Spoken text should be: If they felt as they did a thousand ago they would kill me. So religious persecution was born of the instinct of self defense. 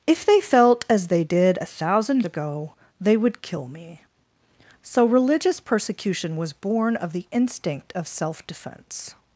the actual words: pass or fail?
pass